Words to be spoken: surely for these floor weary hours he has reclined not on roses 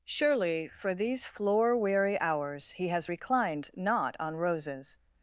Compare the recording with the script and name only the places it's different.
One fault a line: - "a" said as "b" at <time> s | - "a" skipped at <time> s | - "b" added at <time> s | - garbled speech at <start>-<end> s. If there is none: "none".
none